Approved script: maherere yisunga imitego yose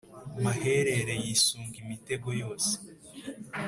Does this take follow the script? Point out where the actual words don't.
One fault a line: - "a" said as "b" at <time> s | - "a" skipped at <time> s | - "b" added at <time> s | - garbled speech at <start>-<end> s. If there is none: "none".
none